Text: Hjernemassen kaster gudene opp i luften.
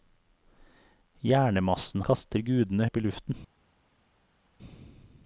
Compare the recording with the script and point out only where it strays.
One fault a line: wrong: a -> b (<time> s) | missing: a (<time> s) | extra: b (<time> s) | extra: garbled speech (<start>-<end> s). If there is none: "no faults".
no faults